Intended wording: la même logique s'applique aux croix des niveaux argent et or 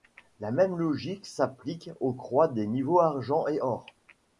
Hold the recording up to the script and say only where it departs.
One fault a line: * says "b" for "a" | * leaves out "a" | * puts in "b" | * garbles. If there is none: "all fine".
all fine